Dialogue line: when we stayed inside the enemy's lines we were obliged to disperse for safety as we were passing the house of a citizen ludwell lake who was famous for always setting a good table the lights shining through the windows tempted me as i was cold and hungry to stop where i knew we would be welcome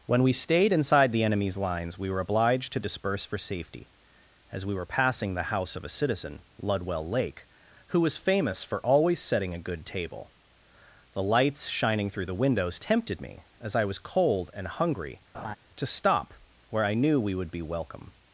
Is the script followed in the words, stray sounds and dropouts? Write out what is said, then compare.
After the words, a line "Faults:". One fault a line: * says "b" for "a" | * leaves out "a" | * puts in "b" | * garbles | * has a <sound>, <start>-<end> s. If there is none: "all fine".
when we stayed inside the enemy's lines we were obliged to disperse for safety as we were passing the house of a citizen ludwell lake who was famous for always setting a good table the lights shining through the windows tempted me as i was cold and hungry to stop where i knew we would be welcome
Faults:
* has a laugh, 15.3-15.6 s